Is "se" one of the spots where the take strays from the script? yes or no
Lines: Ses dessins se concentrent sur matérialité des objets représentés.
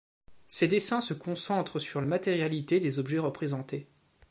no